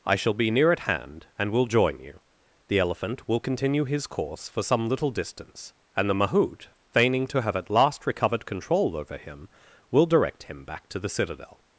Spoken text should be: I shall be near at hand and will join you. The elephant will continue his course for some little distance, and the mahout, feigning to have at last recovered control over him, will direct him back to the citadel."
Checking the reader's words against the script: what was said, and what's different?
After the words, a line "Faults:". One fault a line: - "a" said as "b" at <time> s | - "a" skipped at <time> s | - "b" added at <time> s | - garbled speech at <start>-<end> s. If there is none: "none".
I shall be near at hand and will join you. The elephant will continue his course for some little distance, and the mahout, feigning to have at last recovered control over him, will direct him back to the citadel."
Faults:
none